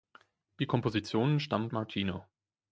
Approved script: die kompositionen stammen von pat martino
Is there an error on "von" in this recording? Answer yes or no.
yes